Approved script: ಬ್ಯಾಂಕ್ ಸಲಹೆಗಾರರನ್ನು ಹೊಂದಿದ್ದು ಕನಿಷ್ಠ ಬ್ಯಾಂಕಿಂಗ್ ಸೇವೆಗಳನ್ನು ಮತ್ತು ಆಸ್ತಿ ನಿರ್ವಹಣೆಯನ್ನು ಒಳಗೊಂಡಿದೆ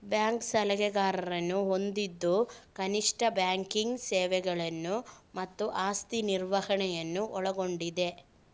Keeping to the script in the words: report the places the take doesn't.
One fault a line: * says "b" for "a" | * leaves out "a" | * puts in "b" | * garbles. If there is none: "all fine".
all fine